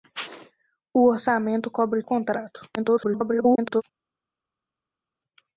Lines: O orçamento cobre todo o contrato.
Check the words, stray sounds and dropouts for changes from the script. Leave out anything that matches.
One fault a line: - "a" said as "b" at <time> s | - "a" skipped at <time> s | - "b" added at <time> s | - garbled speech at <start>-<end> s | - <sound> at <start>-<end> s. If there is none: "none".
- "todo" skipped at 2.0 s
- garbled speech at 2.8-3.8 s